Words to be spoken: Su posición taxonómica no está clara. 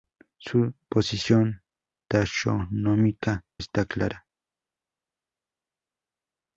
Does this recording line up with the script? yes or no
no